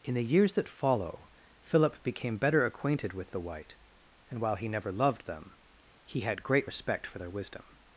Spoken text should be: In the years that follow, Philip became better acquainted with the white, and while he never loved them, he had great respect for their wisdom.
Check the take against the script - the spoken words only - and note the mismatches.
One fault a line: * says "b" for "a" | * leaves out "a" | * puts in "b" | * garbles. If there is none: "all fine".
all fine